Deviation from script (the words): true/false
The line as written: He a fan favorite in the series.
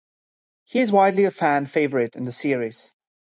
true